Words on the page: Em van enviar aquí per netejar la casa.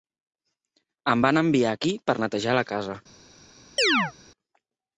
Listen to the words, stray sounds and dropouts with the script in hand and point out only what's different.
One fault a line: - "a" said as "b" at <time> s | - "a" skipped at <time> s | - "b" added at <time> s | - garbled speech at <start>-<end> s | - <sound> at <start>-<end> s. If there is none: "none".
- chirp at 3.8-4.1 s